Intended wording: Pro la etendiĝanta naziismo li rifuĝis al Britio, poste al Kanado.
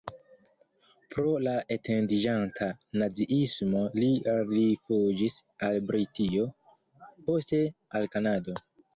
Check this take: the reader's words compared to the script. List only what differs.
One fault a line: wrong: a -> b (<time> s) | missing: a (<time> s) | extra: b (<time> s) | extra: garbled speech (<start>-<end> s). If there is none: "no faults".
no faults